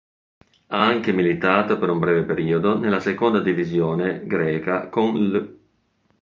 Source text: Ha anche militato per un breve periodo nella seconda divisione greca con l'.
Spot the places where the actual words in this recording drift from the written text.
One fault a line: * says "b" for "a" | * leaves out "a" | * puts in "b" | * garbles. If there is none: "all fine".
all fine